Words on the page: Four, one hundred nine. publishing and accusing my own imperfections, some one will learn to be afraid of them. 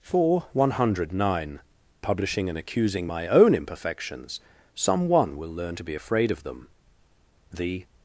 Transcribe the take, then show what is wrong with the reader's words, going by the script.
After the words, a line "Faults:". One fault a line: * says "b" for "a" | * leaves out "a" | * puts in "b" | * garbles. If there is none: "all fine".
Four, one hundred nine. publishing and accusing my own imperfections, some one will learn to be afraid of them. The
Faults:
* puts in "The"